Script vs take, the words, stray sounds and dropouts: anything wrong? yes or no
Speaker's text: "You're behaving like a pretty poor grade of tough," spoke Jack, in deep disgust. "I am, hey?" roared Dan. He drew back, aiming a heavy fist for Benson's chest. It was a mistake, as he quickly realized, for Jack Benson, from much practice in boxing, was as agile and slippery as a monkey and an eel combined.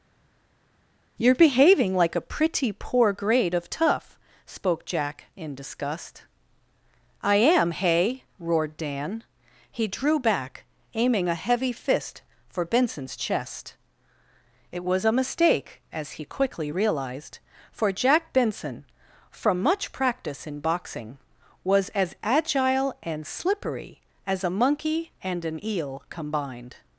yes